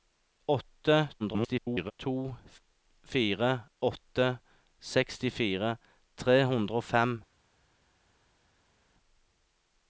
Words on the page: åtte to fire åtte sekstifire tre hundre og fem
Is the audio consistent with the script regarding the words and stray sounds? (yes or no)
no